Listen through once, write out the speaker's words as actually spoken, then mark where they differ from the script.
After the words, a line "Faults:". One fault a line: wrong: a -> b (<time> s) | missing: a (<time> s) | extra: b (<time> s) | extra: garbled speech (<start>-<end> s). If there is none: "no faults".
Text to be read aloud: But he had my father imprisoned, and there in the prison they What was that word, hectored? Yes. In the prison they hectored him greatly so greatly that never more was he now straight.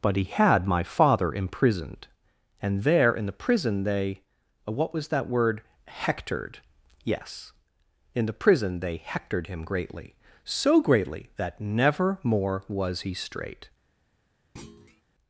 But he had my father imprisoned, and there in the prison they What was that word, hectored? Yes. In the prison they hectored him greatly so greatly that never more was he straight.
Faults:
missing: now (13.1 s)